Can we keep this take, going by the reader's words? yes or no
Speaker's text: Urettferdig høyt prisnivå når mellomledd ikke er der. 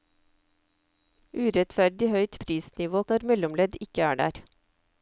yes